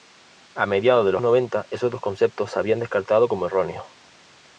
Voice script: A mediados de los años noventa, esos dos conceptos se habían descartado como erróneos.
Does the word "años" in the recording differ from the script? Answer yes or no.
yes